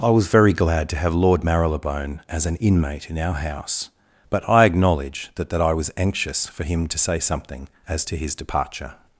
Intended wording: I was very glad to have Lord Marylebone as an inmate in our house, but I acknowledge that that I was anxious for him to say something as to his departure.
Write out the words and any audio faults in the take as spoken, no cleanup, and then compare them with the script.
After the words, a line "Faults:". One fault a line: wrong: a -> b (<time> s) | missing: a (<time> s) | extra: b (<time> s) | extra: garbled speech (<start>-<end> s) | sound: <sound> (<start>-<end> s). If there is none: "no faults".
I was very glad to have Lord Marylebone as an inmate in our house, but I acknowledge that that I was anxious for him to say something as to his departure.
Faults:
no faults